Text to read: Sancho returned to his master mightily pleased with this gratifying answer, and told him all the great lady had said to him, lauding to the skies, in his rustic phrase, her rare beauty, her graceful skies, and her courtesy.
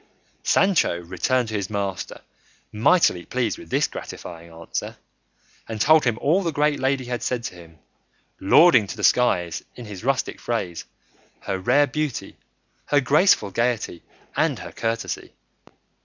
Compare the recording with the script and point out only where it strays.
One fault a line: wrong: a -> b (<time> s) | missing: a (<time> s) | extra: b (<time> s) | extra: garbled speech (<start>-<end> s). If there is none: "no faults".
wrong: skies -> gaiety (13.5 s)